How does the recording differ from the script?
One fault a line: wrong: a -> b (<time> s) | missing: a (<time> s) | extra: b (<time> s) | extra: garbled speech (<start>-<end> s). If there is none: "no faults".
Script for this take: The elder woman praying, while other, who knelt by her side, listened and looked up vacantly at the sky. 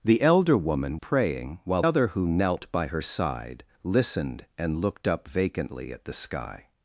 no faults